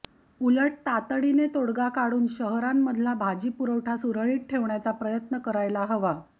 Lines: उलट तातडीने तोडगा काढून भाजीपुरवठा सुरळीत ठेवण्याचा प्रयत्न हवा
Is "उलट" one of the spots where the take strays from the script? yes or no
no